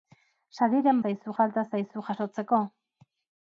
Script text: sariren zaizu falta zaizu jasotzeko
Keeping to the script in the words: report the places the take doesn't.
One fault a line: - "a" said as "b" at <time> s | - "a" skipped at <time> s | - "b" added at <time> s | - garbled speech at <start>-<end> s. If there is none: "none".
none